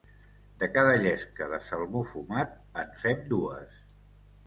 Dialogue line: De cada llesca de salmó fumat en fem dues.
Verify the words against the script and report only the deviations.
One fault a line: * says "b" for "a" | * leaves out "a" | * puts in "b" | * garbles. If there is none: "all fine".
all fine